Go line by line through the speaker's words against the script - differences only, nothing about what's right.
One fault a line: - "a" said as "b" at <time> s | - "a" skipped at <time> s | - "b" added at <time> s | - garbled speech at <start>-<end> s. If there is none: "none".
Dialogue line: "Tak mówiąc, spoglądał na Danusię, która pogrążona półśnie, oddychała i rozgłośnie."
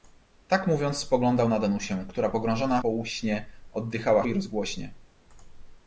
none